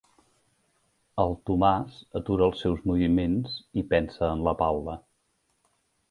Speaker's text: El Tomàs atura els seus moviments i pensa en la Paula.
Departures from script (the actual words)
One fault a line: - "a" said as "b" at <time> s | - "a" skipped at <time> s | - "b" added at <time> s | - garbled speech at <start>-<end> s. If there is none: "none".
none